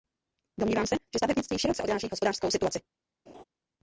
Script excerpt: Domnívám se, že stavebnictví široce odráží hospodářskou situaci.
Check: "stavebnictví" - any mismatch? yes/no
no